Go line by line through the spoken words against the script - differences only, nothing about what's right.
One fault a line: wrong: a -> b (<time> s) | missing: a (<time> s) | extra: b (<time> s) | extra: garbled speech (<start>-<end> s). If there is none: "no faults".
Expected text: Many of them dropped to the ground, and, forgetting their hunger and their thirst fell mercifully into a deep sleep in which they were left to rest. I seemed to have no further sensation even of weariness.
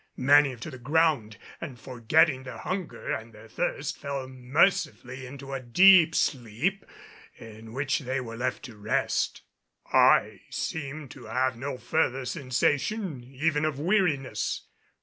missing: them dropped (0.6 s)